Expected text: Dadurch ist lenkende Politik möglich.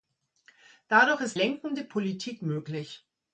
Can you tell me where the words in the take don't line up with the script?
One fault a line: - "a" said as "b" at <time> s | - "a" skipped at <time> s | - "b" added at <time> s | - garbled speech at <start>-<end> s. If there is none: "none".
none